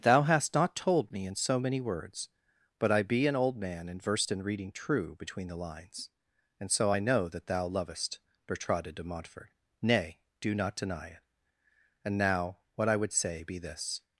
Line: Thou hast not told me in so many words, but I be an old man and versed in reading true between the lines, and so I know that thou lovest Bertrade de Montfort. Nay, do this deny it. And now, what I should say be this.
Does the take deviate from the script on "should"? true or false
true